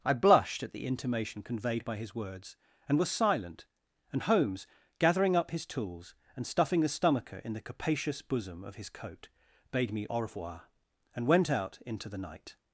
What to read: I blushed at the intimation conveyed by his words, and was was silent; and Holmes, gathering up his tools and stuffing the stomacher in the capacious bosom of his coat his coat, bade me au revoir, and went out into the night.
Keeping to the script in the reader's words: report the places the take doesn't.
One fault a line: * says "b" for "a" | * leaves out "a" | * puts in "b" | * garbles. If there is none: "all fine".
* leaves out "was"
* leaves out "his coat"